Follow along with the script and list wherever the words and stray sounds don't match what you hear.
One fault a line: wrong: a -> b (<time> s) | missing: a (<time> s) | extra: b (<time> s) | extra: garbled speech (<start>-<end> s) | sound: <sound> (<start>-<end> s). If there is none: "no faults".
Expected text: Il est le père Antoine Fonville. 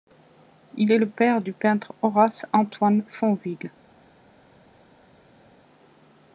extra: du peintre Horace (1.4 s)